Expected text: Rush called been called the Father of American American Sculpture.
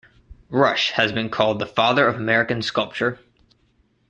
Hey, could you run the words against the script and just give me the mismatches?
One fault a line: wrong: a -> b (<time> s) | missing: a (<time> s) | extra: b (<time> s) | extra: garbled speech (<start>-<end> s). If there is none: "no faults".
wrong: called -> has (0.9 s)
missing: American (2.6 s)